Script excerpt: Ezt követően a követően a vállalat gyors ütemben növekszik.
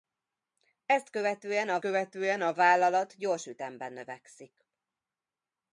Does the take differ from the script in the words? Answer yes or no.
no